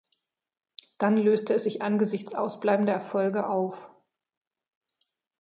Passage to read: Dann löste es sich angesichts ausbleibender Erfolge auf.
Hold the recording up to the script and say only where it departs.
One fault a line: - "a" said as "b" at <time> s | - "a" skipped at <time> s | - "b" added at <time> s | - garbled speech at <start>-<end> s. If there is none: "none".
none